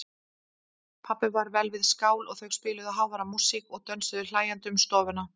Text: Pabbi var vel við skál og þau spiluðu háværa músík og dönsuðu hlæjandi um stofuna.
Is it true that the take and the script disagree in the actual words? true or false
false